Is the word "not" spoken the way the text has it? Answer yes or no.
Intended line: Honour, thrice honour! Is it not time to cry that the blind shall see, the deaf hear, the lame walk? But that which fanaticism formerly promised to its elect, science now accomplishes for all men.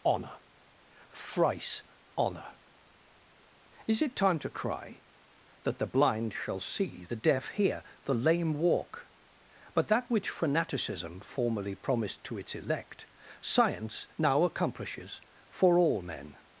no